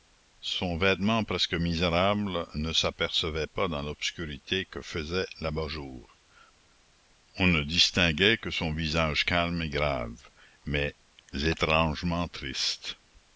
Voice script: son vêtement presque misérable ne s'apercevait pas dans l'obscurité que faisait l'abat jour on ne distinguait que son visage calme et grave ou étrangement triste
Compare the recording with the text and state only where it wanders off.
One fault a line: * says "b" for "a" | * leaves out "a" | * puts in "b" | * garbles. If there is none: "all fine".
* says "mais" for "ou"